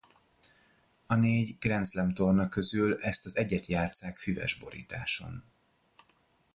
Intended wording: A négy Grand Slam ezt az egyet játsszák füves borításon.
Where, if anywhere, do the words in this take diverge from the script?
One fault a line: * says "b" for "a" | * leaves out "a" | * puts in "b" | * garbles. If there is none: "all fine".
* puts in "torna közül"